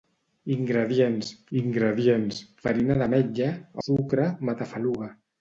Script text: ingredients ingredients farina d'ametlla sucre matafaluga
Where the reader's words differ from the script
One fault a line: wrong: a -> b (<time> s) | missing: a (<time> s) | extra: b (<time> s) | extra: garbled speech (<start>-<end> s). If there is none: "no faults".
no faults